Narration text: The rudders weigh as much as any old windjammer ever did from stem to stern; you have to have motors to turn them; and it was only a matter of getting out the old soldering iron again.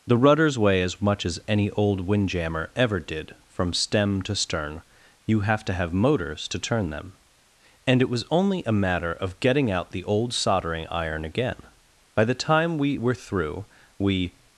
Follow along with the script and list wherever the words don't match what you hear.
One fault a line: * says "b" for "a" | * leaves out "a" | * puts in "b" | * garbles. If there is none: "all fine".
* puts in "By the time we were through we"